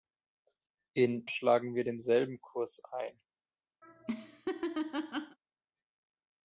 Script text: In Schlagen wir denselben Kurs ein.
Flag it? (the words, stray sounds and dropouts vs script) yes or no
yes